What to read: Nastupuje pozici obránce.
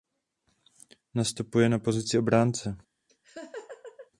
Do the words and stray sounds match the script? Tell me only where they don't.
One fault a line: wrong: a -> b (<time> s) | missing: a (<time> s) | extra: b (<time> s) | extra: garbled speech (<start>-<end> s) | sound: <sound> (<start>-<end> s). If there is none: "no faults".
extra: na (1.7 s)
sound: laugh (3.1-4.1 s)